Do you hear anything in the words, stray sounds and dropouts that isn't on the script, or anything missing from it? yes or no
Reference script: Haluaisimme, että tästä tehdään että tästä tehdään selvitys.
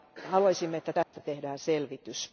yes